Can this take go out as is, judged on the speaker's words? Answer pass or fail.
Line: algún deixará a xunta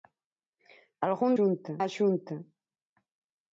fail